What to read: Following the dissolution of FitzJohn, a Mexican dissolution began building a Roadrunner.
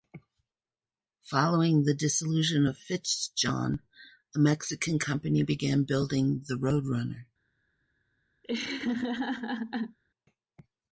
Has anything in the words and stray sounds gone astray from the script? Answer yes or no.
yes